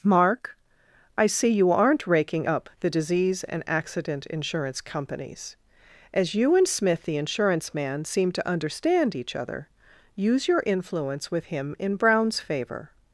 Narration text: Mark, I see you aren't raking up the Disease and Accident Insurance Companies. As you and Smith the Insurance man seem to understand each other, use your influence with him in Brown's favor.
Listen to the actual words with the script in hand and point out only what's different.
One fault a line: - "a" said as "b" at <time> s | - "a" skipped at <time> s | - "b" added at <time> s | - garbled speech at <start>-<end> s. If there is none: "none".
none